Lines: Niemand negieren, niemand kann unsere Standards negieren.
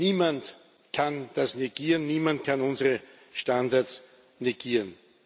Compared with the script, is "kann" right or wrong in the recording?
right